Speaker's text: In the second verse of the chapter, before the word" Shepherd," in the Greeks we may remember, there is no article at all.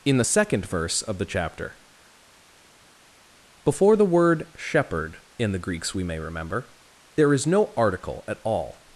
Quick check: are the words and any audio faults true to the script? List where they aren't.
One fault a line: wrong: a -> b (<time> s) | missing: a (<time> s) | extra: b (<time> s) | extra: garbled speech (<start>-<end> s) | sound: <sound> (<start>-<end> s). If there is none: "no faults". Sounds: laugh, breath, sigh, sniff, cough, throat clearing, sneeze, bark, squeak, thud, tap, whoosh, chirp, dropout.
no faults